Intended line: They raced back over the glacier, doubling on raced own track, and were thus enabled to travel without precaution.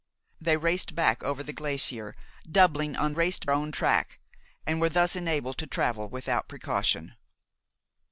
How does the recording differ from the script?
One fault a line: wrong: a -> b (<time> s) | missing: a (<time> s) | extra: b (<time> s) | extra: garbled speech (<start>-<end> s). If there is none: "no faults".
no faults